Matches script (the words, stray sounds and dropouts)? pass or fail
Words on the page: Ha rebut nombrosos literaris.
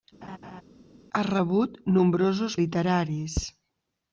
fail